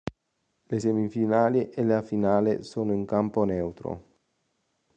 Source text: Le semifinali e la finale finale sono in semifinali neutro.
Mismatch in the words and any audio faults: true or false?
true